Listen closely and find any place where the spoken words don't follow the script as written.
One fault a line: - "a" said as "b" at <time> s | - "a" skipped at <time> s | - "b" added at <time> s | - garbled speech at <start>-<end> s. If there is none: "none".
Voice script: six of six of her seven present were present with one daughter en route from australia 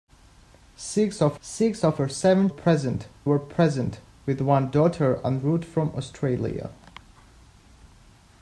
none